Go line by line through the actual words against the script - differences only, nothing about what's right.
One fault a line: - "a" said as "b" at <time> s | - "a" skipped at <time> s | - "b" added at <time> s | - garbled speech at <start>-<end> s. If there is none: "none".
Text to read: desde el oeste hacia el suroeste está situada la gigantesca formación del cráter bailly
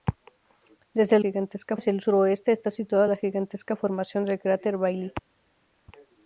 - "oeste" said as "gigantesca" at 1.2 s